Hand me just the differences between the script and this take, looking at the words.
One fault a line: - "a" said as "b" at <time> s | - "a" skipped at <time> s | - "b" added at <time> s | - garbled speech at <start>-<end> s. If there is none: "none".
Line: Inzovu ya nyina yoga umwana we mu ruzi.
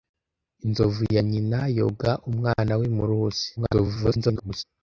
- garbled speech at 3.6-4.6 s